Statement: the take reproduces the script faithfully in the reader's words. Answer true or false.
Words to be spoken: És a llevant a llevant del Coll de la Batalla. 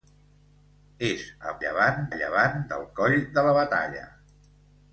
true